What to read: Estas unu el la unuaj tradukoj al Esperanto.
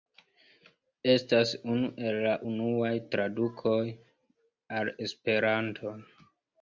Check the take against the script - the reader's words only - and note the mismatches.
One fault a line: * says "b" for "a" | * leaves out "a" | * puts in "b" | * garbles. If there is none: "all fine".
all fine